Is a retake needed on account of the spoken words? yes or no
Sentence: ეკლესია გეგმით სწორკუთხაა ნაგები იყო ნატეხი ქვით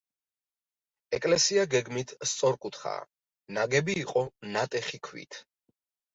no